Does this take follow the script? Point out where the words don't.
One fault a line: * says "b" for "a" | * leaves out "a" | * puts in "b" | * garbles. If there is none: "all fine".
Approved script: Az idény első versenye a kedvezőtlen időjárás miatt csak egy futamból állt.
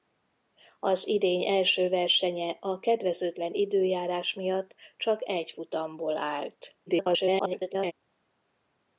* garbles